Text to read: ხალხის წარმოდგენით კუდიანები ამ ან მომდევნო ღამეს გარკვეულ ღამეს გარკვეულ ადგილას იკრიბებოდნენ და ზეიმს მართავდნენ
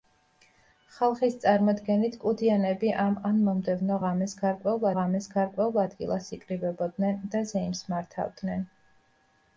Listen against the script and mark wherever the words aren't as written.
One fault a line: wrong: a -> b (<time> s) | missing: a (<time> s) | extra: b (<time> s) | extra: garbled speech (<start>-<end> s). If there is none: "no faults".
no faults